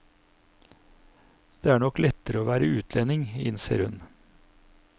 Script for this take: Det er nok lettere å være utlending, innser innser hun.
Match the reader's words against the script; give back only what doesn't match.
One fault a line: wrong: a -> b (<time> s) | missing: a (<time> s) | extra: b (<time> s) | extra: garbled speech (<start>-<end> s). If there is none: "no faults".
missing: innser (3.9 s)